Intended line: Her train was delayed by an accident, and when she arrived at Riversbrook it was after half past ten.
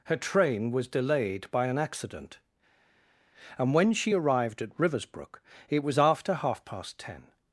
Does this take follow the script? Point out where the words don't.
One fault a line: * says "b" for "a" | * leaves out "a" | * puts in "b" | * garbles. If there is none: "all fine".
all fine